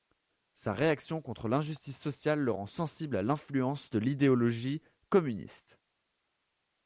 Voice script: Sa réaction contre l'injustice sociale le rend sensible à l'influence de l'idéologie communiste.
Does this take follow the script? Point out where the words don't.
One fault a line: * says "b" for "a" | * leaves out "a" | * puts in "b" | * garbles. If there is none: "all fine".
all fine